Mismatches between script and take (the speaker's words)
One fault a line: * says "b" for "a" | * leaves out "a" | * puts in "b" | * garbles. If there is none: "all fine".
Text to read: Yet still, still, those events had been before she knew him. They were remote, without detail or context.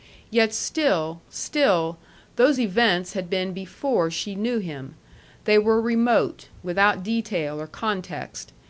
all fine